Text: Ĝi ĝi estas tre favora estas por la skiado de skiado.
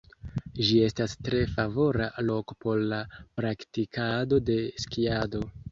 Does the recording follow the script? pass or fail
fail